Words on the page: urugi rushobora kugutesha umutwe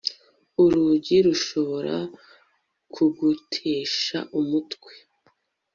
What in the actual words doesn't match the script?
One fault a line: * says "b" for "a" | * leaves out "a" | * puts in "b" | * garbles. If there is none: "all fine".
all fine